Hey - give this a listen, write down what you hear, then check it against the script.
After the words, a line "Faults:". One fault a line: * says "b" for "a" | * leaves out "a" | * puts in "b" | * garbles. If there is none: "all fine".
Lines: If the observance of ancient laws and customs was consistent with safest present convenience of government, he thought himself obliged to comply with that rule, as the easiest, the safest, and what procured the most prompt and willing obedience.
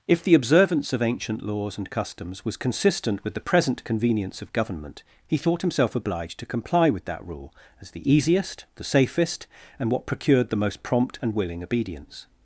If the observance of ancient laws and customs was consistent with the present convenience of government, he thought himself obliged to comply with that rule, as the easiest, the safest, and what procured the most prompt and willing obedience.
Faults:
* says "the" for "safest"